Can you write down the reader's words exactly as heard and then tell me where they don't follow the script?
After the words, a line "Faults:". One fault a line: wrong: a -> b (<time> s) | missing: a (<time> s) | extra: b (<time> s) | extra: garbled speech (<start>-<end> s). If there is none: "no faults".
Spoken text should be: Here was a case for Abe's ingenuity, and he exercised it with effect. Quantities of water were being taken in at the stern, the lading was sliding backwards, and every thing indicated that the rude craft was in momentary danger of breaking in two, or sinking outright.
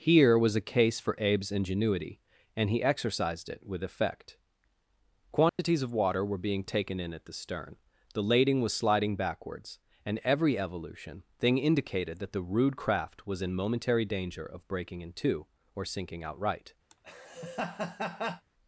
Here was a case for Abe's ingenuity, and he exercised it with effect. Quantities of water were being taken in at the stern, the lading was sliding backwards, and every evolution thing indicated that the rude craft was in momentary danger of breaking in two, or sinking outright.
Faults:
extra: evolution (10.6 s)